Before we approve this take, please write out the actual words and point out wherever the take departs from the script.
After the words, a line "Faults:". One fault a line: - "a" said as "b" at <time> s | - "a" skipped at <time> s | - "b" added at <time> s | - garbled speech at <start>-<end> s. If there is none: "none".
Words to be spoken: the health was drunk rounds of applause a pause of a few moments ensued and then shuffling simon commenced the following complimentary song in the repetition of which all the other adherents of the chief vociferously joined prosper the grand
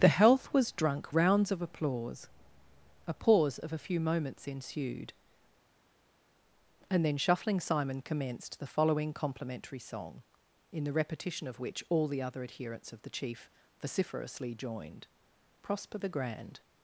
the health was drunk rounds of applause a pause of a few moments ensued and then shuffling simon commenced the following complimentary song in the repetition of which all the other adherents of the chief vociferously joined prosper the grand
Faults:
none